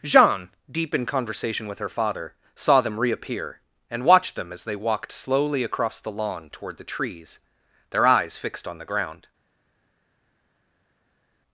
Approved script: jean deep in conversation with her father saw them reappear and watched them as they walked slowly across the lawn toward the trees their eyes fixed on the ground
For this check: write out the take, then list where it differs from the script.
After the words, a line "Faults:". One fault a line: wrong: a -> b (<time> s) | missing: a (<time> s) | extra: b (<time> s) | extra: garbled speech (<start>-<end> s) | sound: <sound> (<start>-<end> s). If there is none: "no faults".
jean deep in conversation with her father saw them reappear and watched them as they walked slowly across the lawn toward the trees their eyes fixed on the ground
Faults:
no faults